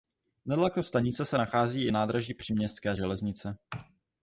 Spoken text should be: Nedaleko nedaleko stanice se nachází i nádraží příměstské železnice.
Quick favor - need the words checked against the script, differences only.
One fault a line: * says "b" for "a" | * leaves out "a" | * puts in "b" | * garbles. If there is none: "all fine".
* leaves out "nedaleko"